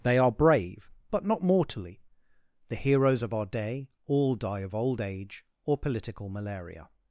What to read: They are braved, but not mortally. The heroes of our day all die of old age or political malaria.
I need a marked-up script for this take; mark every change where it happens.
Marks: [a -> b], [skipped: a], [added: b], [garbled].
They are [braved, -> brave] but not mortally. The heroes of our day all die of old age or political malaria.